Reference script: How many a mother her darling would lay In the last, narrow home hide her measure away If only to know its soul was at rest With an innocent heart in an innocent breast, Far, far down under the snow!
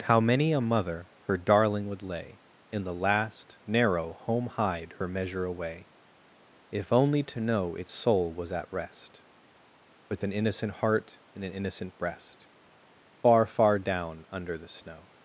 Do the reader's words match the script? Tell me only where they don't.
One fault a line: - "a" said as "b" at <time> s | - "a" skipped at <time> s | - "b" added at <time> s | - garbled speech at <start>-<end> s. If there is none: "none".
none